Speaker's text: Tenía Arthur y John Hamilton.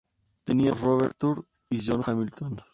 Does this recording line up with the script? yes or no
yes